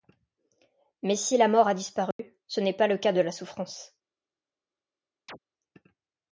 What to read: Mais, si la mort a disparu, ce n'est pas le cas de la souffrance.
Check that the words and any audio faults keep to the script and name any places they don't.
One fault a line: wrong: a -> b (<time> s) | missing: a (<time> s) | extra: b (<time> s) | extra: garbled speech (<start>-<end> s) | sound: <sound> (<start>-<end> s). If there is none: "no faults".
sound: dropout (2.1-2.2 s)
sound: chirp (5.3-5.4 s)